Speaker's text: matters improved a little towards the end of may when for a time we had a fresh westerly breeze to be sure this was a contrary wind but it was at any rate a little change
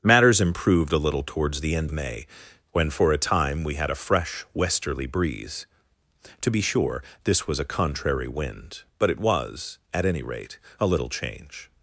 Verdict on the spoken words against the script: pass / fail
fail